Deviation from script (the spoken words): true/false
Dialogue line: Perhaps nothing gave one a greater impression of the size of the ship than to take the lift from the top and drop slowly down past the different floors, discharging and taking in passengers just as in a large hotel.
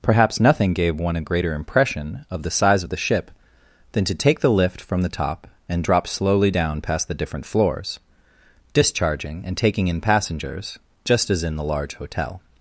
true